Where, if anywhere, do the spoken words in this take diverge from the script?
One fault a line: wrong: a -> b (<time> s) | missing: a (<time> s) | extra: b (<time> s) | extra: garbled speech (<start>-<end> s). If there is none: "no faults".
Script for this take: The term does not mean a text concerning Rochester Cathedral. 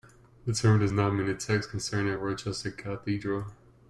no faults